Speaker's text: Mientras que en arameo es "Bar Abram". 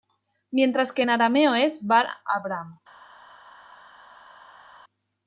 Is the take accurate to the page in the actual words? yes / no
yes